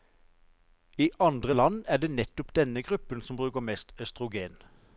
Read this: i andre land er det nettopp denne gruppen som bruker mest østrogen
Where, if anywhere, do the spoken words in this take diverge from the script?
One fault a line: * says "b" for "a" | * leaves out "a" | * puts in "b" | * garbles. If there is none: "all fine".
all fine